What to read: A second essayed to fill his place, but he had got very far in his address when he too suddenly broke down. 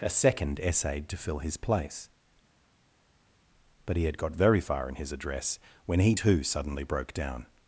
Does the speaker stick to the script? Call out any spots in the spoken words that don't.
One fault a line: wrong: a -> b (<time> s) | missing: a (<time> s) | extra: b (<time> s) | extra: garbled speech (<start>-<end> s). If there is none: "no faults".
no faults